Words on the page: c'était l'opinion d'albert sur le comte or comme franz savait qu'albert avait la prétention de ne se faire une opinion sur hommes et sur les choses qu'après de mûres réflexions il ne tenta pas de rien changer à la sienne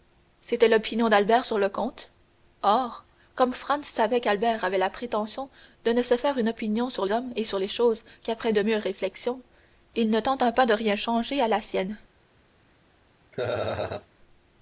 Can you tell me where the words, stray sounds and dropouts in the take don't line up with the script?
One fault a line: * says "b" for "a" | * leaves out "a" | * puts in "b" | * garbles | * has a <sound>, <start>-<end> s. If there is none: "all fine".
* has a laugh, 13.3-14.1 s